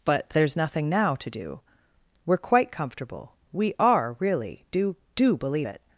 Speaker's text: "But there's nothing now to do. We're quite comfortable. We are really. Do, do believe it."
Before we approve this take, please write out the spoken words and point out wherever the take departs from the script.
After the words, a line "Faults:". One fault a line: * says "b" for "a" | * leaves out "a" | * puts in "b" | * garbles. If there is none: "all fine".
"But there's nothing now to do. We're quite comfortable. We are really. Do, do believe it."
Faults:
all fine